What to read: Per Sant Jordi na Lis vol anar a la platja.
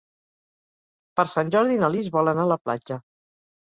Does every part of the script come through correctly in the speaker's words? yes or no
yes